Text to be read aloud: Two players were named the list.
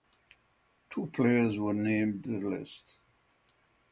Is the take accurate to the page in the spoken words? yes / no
yes